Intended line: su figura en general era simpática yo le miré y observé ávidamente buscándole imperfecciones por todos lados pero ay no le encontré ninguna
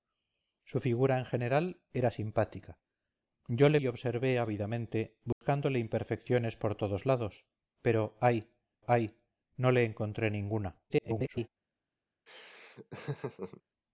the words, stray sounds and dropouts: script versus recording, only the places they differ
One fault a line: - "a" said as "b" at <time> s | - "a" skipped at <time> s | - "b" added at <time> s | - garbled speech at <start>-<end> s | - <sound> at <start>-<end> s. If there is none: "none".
- "miré" skipped at 3.8 s
- dropout at 5.3-5.4 s
- "ay" added at 8.9 s
- garbled speech at 10.9-11.5 s
- laugh at 12.3-13.6 s